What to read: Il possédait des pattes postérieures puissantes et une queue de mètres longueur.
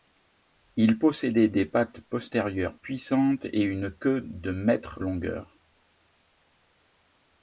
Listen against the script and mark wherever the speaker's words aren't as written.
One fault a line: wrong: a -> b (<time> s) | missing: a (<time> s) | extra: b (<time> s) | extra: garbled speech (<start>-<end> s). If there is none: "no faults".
no faults